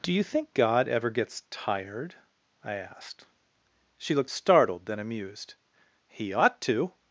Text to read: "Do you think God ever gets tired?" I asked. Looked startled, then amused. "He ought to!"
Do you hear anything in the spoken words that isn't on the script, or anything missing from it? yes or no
yes